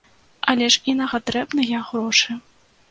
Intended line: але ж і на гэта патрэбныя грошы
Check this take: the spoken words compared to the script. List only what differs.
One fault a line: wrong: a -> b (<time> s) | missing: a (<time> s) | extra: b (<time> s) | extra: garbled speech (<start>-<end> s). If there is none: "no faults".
missing: гэта (1.1 s)